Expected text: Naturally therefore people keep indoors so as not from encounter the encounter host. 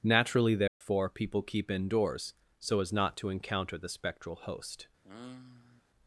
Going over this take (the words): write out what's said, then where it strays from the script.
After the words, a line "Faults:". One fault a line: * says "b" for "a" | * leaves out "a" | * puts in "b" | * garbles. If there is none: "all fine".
Naturally therefore people keep indoors so as not to encounter the spectral host.
Faults:
* says "to" for "from"
* says "spectral" for "encounter"